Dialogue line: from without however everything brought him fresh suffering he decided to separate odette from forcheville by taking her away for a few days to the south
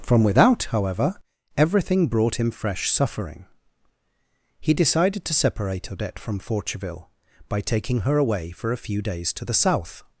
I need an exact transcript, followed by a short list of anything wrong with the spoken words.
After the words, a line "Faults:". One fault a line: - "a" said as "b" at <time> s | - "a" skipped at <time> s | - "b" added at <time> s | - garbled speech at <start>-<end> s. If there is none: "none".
from without however everything brought him fresh suffering he decided to separate odette from forcheville by taking her away for a few days to the south
Faults:
none